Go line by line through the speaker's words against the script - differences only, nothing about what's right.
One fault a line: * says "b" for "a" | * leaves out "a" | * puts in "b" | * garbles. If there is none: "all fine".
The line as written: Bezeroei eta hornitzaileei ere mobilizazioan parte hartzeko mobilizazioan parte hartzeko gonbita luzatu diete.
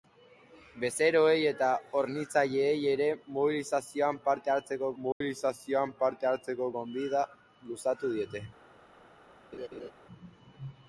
all fine